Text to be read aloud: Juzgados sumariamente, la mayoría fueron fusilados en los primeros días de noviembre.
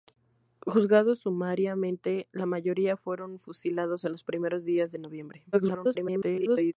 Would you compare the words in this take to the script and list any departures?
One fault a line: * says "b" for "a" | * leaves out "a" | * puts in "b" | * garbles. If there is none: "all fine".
* garbles